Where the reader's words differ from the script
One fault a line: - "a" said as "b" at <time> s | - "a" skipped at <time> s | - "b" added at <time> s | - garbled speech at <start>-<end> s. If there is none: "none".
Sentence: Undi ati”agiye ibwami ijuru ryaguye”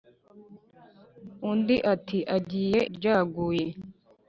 - "ibwami ijuru" skipped at 2.8 s